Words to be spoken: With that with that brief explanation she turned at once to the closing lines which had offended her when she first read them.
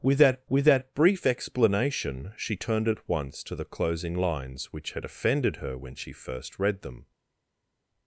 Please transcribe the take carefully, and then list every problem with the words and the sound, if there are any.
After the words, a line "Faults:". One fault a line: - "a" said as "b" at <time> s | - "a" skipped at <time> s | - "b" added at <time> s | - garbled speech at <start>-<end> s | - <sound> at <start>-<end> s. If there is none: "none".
With that with that brief explanation she turned at once to the closing lines which had offended her when she first read them.
Faults:
none